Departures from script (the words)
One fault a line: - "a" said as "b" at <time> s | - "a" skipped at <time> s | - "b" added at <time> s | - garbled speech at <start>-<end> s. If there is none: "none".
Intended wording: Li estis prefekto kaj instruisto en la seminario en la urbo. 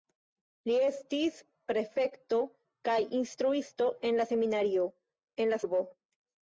none